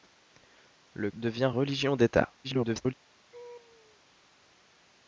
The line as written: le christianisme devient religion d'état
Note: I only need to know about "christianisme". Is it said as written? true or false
false